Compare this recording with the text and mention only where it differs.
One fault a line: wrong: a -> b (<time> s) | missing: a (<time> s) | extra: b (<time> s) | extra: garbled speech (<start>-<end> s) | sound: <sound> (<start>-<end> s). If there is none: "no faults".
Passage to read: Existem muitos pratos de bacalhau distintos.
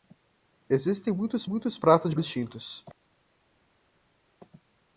extra: muitos (1.4 s)
missing: bacalhau (2.1 s)